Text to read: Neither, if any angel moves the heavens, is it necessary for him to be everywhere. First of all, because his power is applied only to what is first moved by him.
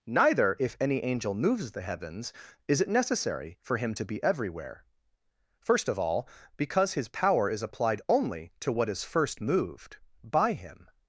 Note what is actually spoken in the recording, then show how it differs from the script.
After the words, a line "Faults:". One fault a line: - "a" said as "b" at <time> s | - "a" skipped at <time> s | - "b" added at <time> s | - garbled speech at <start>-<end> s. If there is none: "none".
Neither, if any angel moves the heavens, is it necessary for him to be everywhere. First of all, because his power is applied only to what is first moved by him.
Faults:
none